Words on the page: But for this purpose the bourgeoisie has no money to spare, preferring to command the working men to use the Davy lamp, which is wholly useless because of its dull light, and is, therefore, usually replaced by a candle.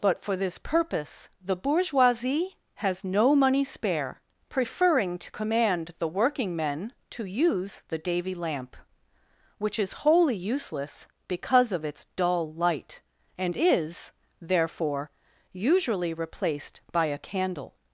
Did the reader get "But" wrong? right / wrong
right